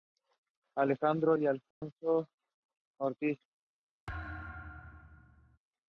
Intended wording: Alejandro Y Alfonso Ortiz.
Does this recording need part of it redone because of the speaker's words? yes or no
no